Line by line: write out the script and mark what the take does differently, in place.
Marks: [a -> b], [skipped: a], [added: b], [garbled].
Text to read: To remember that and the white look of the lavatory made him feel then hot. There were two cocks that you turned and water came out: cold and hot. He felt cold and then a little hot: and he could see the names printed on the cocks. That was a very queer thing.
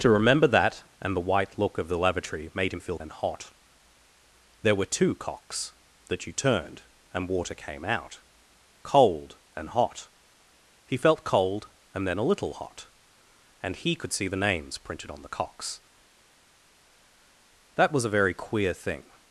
To remember that and the white look of the lavatory made him feel then hot. There were two cocks that you turned and water came out: cold and hot. He felt cold and then a little hot: and he could see the names printed on the cocks. That was a very queer thing.